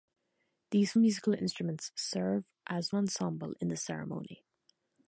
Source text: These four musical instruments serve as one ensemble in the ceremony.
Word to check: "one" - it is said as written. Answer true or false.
false